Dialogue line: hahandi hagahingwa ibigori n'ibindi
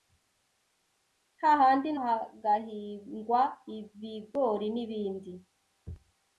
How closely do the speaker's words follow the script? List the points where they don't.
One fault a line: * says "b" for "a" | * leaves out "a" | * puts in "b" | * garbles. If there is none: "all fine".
all fine